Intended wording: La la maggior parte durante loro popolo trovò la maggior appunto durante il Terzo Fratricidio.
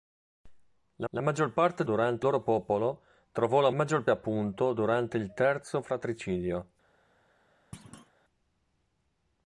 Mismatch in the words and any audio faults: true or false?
true